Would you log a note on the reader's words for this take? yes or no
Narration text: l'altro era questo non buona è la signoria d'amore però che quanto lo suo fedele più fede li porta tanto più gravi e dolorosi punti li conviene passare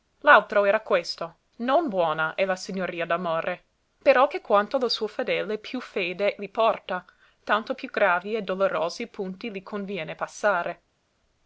no